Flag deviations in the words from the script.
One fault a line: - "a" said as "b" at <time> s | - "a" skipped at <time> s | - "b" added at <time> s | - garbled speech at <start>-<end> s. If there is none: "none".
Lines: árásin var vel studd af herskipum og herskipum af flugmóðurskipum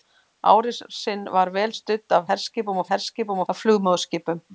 none